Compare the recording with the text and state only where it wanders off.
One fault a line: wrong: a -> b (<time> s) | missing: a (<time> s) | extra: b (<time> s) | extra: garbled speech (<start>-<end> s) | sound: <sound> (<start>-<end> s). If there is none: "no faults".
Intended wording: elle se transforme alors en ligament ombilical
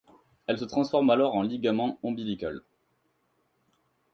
no faults